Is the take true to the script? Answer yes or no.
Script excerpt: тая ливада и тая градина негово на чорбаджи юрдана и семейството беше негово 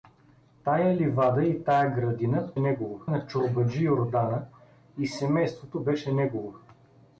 yes